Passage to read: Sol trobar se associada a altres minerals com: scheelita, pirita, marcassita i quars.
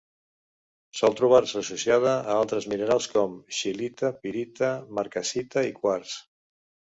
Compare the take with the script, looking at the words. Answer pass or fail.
pass